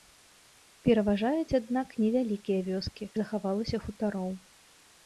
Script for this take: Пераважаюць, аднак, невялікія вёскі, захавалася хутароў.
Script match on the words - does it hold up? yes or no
yes